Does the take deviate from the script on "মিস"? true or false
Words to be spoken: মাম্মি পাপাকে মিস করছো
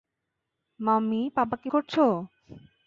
true